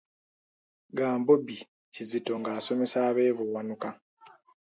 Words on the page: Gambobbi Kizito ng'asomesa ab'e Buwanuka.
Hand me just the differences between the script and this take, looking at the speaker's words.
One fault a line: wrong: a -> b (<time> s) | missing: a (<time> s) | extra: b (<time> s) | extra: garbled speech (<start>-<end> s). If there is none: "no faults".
no faults